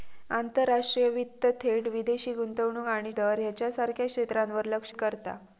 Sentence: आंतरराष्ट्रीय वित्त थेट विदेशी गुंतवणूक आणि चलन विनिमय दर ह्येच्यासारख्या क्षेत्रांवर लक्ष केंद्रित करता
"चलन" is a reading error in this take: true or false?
true